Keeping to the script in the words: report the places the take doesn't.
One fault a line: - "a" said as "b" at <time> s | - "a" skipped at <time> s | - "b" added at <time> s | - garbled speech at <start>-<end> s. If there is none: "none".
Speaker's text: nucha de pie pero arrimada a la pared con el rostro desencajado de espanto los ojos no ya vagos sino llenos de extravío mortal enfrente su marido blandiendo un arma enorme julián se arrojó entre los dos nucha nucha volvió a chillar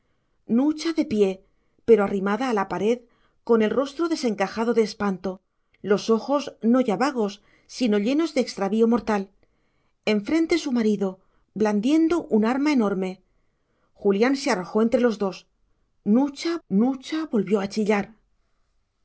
none